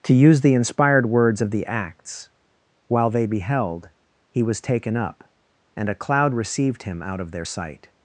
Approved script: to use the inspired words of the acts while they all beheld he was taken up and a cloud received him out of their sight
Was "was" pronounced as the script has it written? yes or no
yes